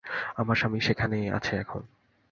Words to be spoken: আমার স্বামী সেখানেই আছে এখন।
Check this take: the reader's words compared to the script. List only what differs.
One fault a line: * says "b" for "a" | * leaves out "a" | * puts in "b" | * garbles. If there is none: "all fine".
all fine